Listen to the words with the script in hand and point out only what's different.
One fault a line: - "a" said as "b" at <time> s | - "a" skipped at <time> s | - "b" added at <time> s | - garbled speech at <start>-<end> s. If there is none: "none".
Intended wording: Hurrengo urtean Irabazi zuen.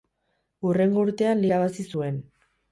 none